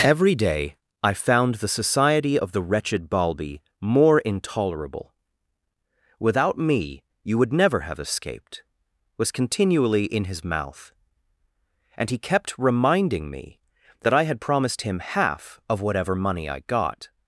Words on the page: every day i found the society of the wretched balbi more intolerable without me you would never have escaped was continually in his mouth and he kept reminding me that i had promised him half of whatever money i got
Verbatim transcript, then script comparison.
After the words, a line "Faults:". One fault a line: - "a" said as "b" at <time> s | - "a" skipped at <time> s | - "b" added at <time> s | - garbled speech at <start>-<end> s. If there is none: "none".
every day i found the society of the wretched balbi more intolerable without me you would never have escaped was continually in his mouth and he kept reminding me that i had promised him half of whatever money i got
Faults:
none